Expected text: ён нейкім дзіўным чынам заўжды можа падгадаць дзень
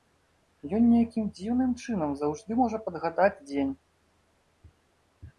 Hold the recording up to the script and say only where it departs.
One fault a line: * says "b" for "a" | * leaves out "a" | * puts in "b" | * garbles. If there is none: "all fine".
all fine